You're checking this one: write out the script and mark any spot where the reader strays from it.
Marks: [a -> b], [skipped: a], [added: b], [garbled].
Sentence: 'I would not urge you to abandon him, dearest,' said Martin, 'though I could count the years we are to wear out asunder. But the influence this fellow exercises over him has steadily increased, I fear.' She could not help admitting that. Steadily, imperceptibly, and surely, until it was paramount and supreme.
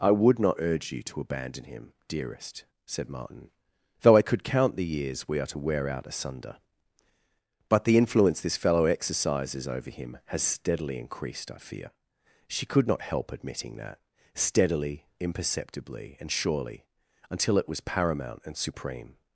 'I would not urge you to abandon him, dearest,' said Martin, 'though I could count the years we are to wear out asunder. But the influence this fellow exercises over him has steadily increased, I fear.' She could not help admitting that. Steadily, imperceptibly, and surely, until it was paramount and supreme.